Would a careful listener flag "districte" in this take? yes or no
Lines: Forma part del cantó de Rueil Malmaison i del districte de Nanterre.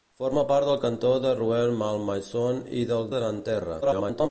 yes